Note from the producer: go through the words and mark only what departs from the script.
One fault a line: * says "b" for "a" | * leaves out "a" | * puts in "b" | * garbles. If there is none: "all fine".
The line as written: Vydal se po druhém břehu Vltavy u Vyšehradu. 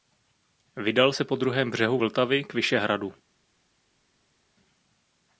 * says "k" for "u"